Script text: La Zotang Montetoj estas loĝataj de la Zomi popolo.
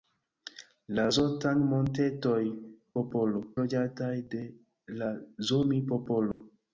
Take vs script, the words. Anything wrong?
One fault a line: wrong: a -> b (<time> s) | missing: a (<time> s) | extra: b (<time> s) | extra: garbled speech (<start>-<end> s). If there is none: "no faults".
wrong: estas -> popolo (3.0 s)